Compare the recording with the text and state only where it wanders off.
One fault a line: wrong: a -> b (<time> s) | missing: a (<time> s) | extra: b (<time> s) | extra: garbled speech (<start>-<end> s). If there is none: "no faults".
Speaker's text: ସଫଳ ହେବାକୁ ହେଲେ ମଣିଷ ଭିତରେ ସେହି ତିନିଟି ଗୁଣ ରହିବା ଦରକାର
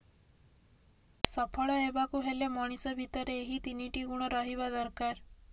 wrong: ସେହି -> ଏହି (3.4 s)